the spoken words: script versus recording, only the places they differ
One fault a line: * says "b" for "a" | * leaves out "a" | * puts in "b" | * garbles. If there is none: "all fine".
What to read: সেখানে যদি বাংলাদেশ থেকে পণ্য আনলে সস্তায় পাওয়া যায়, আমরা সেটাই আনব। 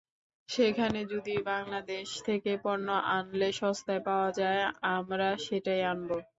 all fine